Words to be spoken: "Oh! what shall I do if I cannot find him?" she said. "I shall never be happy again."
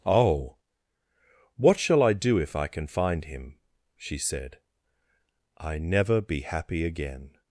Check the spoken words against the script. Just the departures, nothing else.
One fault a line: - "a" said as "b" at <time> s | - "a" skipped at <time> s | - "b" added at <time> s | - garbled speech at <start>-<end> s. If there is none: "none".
- "cannot" said as "can" at 2.7 s
- "shall" skipped at 5.8 s